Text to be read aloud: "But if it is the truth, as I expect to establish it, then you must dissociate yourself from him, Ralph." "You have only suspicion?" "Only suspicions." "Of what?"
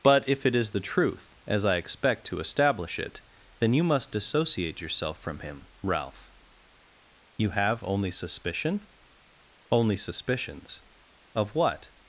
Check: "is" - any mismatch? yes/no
no